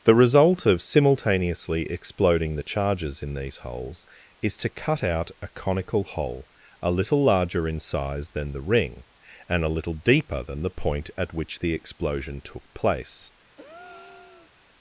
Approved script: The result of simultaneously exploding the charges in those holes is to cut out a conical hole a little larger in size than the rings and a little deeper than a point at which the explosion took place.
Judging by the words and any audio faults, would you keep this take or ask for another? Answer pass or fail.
fail